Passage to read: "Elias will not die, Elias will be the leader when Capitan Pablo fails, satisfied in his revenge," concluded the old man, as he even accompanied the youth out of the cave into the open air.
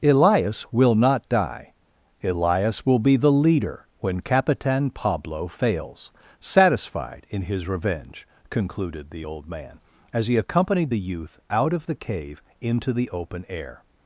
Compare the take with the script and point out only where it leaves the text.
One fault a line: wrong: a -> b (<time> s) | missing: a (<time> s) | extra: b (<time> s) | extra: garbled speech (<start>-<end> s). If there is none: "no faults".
missing: even (10.4 s)